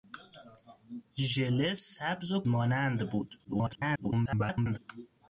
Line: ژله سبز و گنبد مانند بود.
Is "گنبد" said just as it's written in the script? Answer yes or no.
no